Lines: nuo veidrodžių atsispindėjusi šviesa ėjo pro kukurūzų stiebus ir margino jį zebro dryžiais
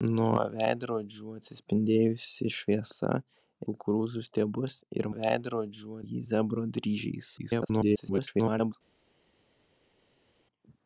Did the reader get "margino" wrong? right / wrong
wrong